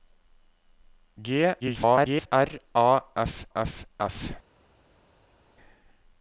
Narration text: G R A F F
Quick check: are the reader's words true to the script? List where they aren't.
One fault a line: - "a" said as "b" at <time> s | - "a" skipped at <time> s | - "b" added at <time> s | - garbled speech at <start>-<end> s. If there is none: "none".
- garbled speech at 1.6-2.3 s
- "F" added at 4.0 s